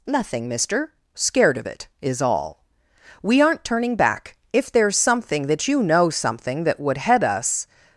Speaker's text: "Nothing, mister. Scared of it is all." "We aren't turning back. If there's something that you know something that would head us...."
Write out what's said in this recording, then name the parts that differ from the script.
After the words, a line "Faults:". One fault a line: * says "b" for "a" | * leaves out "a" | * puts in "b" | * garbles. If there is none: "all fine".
"Nothing, mister. Scared of it is all." "We aren't turning back. If there's something that you know something that would head us...."
Faults:
all fine